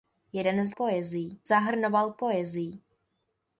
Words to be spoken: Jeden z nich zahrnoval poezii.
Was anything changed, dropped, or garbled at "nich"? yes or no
yes